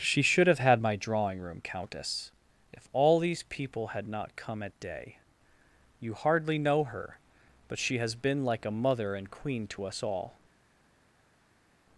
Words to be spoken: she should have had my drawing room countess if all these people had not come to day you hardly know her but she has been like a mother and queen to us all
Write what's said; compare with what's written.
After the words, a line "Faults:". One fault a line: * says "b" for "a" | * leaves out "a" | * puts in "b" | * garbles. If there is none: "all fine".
she should have had my drawing room countess if all these people had not come at day you hardly know her but she has been like a mother and queen to us all
Faults:
* says "at" for "to"